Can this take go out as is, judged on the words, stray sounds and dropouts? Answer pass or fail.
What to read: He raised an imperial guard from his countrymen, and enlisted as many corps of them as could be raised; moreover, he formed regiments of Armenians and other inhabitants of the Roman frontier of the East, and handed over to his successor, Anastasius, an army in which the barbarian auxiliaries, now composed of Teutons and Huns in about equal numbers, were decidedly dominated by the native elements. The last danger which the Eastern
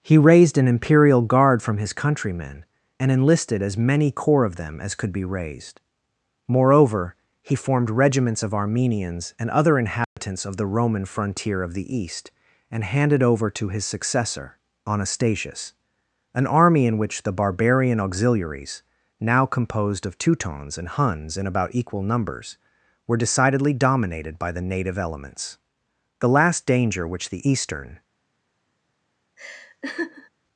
fail